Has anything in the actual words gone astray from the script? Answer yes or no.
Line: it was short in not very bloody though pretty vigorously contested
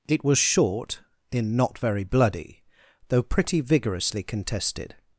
no